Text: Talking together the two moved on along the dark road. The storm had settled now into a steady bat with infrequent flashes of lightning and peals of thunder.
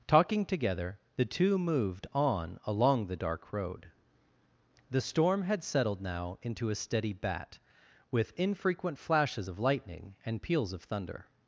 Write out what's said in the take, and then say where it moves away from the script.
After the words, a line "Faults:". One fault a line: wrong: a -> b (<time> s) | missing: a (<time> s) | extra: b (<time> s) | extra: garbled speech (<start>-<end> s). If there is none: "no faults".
Talking together the two moved on along the dark road. The storm had settled now into a steady bat with infrequent flashes of lightning and peals of thunder.
Faults:
no faults